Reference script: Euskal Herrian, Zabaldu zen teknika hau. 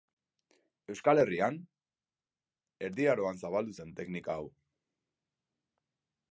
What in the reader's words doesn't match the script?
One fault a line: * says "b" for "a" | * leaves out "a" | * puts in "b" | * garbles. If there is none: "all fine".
* puts in "Erdi Aroan"